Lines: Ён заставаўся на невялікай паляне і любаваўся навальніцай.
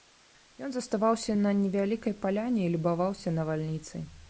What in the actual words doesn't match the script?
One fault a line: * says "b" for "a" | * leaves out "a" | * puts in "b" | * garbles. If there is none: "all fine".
all fine